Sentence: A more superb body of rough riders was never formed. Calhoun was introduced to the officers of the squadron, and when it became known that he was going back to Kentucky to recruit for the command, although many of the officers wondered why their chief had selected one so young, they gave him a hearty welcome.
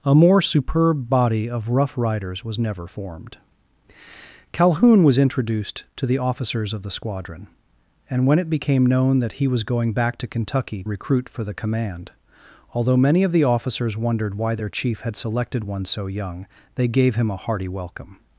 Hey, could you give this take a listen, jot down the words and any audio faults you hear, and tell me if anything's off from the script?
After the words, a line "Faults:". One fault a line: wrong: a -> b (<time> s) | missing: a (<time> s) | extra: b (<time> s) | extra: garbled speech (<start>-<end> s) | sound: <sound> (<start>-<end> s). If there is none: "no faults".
A more superb body of rough riders was never formed. Calhoun was introduced to the officers of the squadron, and when it became known that he was going back to Kentucky recruit for the command, although many of the officers wondered why their chief had selected one so young, they gave him a hearty welcome.
Faults:
missing: to (10.8 s)